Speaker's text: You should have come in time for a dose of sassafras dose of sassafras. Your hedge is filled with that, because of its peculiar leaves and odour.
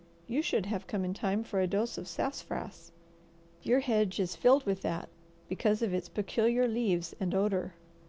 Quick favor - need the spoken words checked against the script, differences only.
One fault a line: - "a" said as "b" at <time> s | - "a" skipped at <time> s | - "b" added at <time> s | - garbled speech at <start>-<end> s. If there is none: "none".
- "dose of sassafras" skipped at 2.9 s